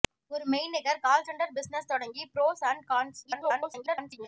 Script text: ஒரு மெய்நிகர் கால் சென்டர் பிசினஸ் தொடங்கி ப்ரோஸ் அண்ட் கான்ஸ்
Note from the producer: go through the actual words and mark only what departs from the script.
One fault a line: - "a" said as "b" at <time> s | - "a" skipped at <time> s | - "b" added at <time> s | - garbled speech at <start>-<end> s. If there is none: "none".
- garbled speech at 3.2-4.3 s